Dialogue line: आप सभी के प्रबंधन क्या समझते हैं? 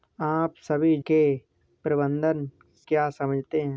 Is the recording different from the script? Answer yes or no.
no